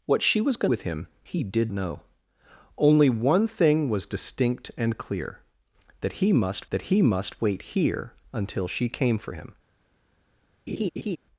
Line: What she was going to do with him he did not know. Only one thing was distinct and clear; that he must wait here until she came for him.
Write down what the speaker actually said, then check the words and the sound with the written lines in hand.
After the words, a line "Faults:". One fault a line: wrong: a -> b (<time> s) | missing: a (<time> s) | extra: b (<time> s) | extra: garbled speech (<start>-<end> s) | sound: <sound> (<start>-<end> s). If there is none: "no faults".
What she was going do with him he did know. Only one thing was distinct and clear; that he must that he must wait here until she came for him.
Faults:
missing: to (0.7 s)
missing: not (1.7 s)
extra: that he must (6.7 s)
sound: laugh (10.7-11.2 s)